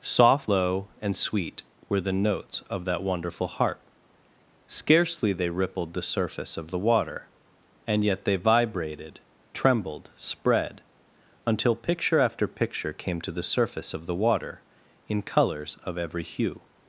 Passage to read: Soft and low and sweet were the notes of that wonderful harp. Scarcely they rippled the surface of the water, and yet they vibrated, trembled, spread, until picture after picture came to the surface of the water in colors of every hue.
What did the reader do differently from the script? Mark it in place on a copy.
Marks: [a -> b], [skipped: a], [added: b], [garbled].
Soft [skipped: and] low and sweet were the notes of that wonderful harp. Scarcely they rippled the surface of the water, and yet they vibrated, trembled, spread, until picture after picture came to the surface of the water in colors of every hue.